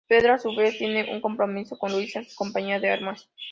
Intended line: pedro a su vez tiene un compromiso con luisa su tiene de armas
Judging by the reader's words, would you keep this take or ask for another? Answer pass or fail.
fail